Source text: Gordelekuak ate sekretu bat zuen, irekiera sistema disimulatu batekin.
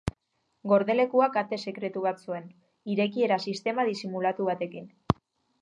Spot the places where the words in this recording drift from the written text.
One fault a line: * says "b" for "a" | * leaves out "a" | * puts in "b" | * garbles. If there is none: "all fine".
all fine